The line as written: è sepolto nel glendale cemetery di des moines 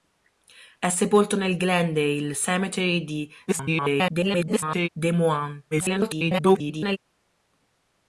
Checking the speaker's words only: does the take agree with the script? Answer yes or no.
no